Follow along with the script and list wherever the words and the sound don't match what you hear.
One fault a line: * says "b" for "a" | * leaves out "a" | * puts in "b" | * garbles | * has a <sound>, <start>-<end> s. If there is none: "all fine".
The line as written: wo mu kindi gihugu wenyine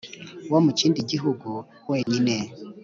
* has a dropout, 2.0-2.1 s